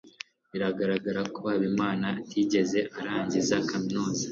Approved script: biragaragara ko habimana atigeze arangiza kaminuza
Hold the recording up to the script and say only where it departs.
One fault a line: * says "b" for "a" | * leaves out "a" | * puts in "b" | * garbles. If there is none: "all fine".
all fine